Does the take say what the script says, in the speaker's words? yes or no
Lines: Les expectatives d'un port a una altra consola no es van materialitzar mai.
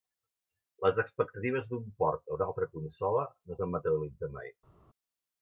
yes